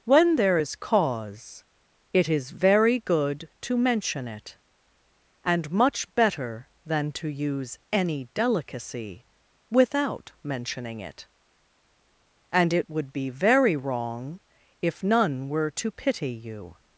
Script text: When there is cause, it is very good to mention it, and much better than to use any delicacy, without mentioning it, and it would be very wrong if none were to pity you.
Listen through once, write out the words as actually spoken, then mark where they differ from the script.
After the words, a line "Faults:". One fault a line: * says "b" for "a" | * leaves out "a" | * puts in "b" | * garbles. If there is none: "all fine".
When there is cause, it is very good to mention it, and much better than to use any delicacy, without mentioning it, and it would be very wrong if none were to pity you.
Faults:
all fine